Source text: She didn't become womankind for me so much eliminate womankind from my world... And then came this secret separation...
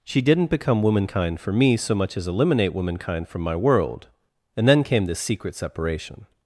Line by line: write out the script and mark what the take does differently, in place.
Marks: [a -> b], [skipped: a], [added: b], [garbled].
She didn't become womankind for me so much [added: as] eliminate womankind from my world... And then came this secret separation...